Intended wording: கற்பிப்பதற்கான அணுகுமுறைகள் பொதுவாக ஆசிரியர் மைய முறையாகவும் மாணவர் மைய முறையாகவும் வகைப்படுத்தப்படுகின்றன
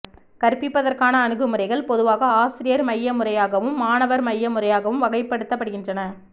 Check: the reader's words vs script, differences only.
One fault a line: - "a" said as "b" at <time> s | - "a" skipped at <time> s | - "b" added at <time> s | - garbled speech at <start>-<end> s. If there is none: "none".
none